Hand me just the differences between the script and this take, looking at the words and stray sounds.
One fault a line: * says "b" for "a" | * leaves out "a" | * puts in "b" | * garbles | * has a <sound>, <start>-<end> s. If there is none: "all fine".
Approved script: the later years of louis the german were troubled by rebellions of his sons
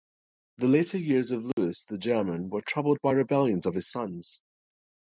* has a dropout, 1.5-1.6 s